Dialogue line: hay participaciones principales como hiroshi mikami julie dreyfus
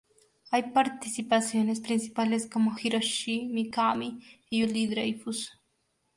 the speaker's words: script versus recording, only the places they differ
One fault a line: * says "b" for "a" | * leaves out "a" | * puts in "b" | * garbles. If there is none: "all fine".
* puts in "y"